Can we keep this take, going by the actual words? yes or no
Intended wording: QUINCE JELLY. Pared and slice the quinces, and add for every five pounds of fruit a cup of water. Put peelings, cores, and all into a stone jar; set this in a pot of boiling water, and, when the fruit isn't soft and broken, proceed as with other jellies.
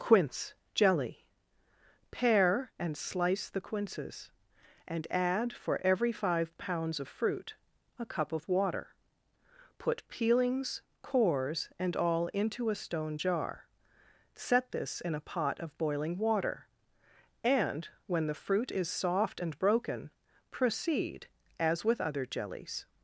no